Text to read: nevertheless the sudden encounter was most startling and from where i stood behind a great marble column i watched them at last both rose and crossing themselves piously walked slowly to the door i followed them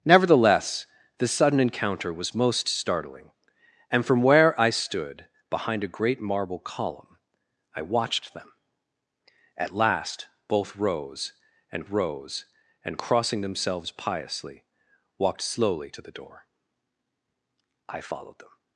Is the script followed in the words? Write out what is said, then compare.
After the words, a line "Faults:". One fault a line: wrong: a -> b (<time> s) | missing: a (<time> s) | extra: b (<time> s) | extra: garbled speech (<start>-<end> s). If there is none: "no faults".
nevertheless the sudden encounter was most startling and from where i stood behind a great marble column i watched them at last both rose and rose and crossing themselves piously walked slowly to the door i followed them
Faults:
extra: rose and (11.9 s)